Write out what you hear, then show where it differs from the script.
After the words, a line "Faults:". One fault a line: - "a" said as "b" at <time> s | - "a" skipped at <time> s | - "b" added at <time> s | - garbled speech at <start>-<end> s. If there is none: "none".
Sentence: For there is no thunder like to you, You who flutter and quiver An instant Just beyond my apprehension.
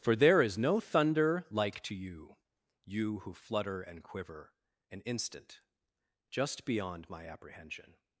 For there is no thunder like to you, You who flutter and quiver An instant Just beyond my apprehension.
Faults:
none